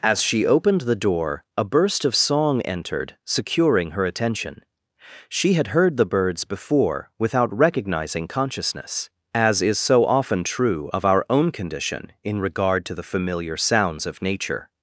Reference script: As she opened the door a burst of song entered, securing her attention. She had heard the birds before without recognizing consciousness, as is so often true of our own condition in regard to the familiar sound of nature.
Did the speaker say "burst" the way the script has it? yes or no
yes